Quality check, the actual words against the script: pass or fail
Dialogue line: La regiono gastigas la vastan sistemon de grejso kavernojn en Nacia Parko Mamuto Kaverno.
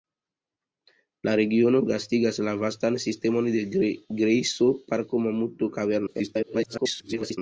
fail